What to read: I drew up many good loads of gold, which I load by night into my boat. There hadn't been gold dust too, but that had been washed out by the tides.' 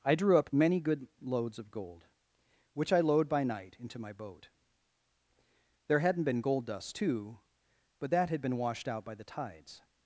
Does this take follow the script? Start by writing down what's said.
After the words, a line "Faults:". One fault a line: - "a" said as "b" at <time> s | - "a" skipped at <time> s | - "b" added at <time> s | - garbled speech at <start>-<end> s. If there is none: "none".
I drew up many good loads of gold, which I load by night into my boat. There hadn't been gold dust too, but that had been washed out by the tides.'
Faults:
none